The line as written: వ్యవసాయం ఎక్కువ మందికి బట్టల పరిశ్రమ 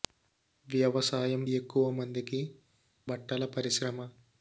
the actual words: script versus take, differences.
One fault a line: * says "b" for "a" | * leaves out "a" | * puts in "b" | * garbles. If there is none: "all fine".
all fine